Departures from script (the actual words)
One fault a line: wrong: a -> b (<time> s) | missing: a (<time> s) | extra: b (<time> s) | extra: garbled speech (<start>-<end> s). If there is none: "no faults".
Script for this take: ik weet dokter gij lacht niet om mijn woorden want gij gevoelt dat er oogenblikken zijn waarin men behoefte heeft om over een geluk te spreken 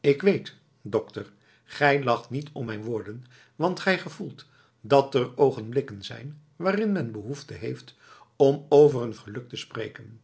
no faults